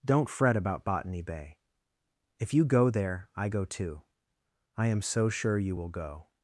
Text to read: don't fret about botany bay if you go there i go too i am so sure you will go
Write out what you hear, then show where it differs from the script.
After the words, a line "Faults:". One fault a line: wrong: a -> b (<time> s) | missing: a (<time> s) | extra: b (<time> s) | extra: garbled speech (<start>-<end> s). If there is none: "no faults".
don't fret about botany bay if you go there i go too i am so sure you will go
Faults:
no faults